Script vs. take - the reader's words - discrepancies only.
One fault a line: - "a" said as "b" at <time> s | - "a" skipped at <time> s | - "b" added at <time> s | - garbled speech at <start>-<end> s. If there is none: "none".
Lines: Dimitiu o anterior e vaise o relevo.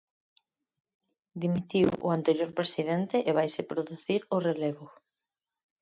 - "presidente" added at 2.6 s
- "producir" added at 3.7 s